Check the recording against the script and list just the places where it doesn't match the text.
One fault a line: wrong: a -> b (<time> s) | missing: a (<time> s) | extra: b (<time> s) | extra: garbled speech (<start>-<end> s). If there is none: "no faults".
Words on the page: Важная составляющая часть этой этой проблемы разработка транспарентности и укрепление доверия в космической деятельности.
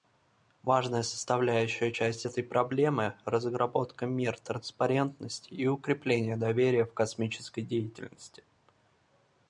missing: этой (2.4 s)
extra: мер (4.0 s)